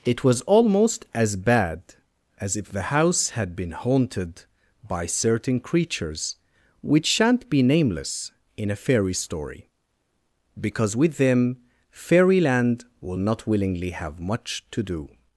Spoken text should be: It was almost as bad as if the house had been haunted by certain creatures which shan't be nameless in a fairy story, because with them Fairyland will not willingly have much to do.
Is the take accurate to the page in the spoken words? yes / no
yes